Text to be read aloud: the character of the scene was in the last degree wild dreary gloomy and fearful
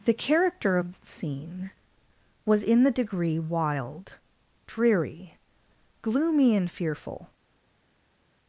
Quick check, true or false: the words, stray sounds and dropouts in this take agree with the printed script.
false